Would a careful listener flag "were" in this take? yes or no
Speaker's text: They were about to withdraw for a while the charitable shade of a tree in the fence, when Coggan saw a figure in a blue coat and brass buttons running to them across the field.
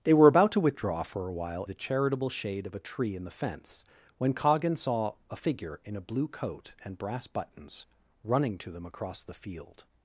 no